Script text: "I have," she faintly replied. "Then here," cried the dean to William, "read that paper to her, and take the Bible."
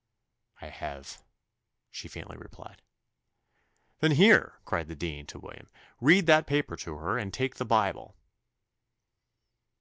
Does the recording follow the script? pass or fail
pass